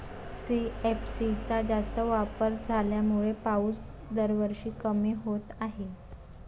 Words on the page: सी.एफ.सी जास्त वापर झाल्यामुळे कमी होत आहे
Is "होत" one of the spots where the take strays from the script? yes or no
no